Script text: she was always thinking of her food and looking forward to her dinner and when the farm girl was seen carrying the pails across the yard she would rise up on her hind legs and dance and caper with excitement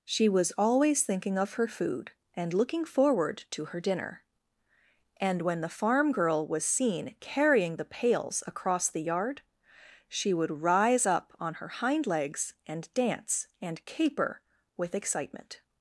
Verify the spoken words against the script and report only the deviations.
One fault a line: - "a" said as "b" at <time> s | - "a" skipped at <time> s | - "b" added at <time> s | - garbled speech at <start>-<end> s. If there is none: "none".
none